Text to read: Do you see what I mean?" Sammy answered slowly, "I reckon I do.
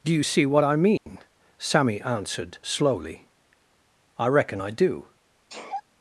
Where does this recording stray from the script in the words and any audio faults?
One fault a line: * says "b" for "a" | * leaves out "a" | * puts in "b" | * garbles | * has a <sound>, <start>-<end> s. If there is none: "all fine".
* has a dropout, 1.0-1.1 s
* has a sneeze, 5.5-5.8 s